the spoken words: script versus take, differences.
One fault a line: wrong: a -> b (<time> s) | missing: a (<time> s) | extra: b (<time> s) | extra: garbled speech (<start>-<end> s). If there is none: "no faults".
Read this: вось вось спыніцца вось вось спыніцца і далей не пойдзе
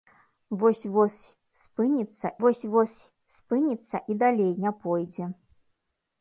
no faults